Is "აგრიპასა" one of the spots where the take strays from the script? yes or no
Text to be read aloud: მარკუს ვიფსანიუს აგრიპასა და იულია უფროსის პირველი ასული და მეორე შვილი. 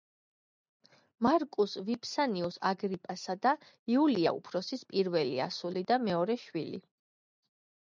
no